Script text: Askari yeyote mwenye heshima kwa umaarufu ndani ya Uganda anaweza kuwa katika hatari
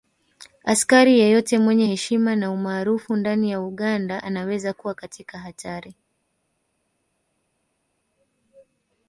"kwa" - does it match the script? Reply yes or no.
no